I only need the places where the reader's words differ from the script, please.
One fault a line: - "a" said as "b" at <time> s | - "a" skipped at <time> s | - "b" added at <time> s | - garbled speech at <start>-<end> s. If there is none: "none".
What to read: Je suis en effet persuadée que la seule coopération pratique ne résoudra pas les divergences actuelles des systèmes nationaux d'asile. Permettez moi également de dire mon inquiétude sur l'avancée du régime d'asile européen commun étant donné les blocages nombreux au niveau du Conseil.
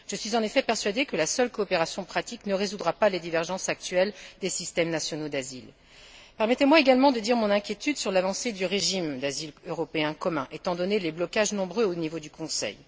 none